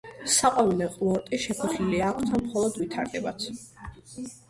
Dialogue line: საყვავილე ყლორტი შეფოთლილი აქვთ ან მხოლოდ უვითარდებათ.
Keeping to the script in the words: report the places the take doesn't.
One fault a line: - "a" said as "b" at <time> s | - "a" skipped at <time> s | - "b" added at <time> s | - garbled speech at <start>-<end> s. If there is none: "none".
none